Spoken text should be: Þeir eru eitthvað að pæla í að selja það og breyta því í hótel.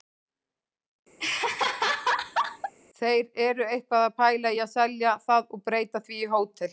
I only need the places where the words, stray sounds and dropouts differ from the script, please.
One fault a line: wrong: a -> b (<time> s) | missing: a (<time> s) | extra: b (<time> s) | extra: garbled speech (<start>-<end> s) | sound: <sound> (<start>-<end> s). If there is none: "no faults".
sound: laugh (1.2-2.7 s)